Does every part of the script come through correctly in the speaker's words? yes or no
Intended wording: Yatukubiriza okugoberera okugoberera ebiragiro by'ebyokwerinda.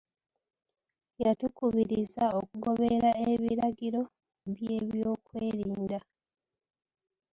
no